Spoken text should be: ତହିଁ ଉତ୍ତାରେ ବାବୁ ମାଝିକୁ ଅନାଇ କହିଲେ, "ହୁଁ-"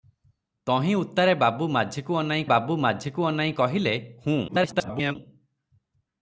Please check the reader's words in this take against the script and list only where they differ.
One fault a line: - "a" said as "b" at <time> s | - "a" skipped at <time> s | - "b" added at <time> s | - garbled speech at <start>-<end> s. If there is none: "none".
- "ବାବୁ ମାଝିକୁ ଅନାଇ" added at 2.4 s
- garbled speech at 4.5-5.2 s